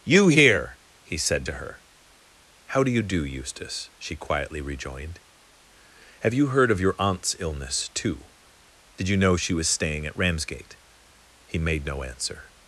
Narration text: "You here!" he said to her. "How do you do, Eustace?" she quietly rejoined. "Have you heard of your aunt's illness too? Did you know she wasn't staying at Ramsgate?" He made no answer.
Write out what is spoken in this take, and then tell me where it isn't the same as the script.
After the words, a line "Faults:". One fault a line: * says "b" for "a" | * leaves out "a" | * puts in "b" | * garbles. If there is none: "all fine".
"You here!" he said to her. "How do you do, Eustace?" she quietly rejoined. "Have you heard of your aunt's illness too? Did you know she was staying at Ramsgate?" He made no answer.
Faults:
* says "was" for "wasn't"